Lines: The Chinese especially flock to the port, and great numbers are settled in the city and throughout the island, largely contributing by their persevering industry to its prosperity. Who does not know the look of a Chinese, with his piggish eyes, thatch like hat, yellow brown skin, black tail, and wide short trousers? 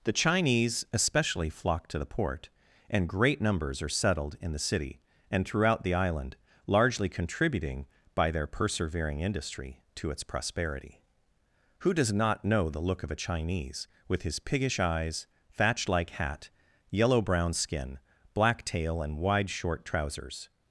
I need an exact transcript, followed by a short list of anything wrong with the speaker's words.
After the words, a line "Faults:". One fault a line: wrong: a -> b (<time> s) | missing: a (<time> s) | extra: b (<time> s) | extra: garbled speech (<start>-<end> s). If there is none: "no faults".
The Chinese especially flock to the port, and great numbers are settled in the city and throughout the island, largely contributing by their persevering industry to its prosperity. Who does not know the look of a Chinese, with his piggish eyes, thatch like hat, yellow brown skin, black tail, and wide short trousers?
Faults:
no faults